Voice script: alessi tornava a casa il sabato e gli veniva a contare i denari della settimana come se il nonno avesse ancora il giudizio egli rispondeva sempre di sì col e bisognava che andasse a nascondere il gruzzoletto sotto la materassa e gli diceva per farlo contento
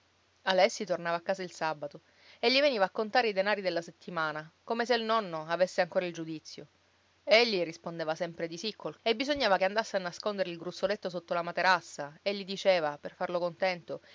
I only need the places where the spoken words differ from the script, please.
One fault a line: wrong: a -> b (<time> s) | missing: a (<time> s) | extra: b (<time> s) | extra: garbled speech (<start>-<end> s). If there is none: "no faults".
no faults